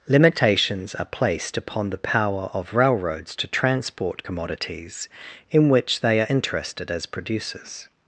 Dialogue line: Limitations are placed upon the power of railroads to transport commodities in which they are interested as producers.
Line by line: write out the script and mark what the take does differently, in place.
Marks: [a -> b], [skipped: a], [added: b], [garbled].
Limitations are placed upon the power of railroads to transport commodities in which they are interested as producers.